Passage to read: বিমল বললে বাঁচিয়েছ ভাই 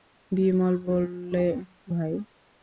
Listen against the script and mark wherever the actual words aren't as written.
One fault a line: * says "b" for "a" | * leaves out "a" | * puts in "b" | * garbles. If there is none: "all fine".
* leaves out "বাঁচিয়েছ"